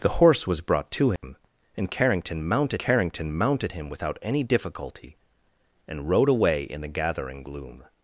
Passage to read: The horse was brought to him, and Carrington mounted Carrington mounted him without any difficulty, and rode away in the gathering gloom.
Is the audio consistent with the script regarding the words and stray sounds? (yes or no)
no